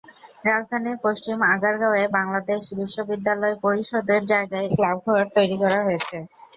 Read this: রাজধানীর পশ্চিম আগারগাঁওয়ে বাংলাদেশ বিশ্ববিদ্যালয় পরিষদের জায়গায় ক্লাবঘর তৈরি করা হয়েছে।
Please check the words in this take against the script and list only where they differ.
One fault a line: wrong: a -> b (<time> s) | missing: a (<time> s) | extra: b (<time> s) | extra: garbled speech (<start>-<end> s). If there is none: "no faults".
no faults